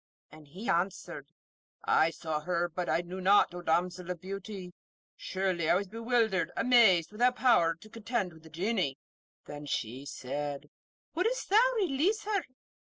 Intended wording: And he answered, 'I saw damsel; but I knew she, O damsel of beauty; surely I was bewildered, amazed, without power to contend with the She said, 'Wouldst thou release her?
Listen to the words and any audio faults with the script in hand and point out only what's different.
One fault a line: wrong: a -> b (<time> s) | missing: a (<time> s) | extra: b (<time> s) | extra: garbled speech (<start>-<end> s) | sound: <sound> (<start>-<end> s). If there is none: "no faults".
wrong: damsel -> her (2.4 s)
wrong: she -> not (3.2 s)
extra: Genie Then (8.5 s)